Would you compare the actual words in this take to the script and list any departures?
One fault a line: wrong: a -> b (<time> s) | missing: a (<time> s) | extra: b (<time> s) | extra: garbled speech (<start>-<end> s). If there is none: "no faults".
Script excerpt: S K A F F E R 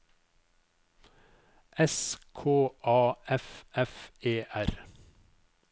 no faults